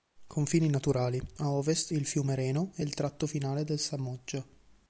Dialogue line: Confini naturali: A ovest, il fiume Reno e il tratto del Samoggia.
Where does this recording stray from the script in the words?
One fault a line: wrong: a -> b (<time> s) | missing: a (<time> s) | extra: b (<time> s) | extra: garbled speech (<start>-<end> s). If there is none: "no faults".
extra: finale (3.3 s)